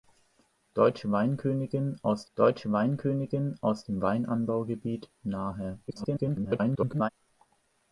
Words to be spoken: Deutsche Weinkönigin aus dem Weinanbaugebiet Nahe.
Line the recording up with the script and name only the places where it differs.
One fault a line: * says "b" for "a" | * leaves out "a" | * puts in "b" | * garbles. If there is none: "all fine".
* puts in "deutsche Weinkönigin aus"
* garbles